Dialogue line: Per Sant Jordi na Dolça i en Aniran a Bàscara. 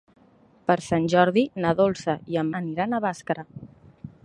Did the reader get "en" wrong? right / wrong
right